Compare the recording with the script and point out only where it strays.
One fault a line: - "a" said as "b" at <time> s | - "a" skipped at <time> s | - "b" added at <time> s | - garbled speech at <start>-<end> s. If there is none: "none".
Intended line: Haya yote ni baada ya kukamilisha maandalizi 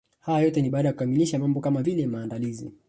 - "mambo kama vile" added at 1.4 s